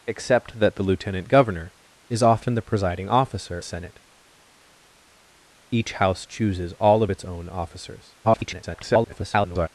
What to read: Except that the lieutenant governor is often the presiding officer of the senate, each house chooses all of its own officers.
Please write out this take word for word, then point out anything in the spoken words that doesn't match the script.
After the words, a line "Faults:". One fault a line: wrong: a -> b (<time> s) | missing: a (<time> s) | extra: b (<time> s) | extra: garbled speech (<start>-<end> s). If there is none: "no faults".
Except that the lieutenant governor is often the presiding officer senate, each house chooses all of its own officers. [garbled]
Faults:
missing: of the (3.6 s)
extra: garbled speech (8.2-9.7 s)